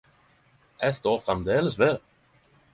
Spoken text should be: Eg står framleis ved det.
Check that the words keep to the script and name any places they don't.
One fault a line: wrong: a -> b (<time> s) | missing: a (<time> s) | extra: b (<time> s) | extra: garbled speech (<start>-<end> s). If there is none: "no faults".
no faults